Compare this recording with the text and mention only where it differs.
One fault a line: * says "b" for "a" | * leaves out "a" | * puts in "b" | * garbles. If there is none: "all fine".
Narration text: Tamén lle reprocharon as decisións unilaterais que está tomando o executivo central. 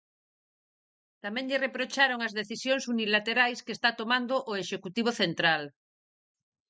all fine